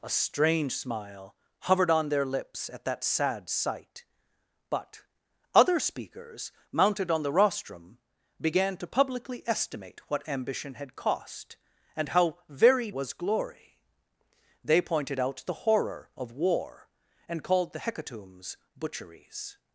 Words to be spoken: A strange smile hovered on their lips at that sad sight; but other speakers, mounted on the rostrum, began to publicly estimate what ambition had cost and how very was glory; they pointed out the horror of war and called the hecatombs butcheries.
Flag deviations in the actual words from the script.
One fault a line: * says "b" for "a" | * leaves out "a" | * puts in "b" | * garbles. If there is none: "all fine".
all fine